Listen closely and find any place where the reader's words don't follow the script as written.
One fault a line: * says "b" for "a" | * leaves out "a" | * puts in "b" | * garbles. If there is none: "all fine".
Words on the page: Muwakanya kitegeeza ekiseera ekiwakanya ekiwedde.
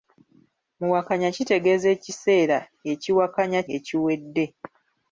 all fine